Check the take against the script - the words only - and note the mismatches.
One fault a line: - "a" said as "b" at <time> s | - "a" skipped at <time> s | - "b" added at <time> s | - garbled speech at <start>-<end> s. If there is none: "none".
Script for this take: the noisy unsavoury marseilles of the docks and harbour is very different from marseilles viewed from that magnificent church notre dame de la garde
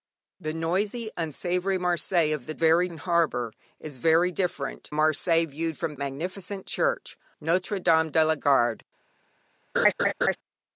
- "docks" said as "very" at 2.6 s
- "from" skipped at 4.9 s
- "that" skipped at 6.0 s